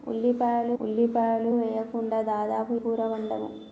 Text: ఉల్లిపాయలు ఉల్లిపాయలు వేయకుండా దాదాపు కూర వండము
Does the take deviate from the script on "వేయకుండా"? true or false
false